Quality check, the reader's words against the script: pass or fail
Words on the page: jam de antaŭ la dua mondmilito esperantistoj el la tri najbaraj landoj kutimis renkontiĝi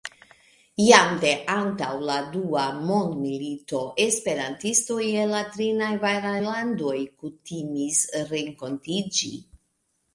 pass